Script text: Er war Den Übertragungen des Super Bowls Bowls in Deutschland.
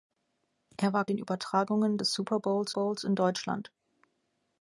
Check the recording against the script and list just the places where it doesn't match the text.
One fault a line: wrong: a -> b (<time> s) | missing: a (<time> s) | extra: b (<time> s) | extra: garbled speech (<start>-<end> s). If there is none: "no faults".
no faults